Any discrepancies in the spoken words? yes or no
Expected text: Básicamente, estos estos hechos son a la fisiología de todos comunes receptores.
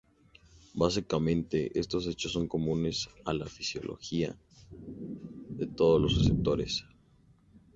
yes